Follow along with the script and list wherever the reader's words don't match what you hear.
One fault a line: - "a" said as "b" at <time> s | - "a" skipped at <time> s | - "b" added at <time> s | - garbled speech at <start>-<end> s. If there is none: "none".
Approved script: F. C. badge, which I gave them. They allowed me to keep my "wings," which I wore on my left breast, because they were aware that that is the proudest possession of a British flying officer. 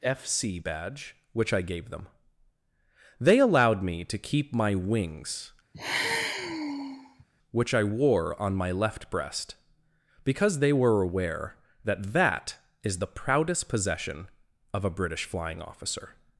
none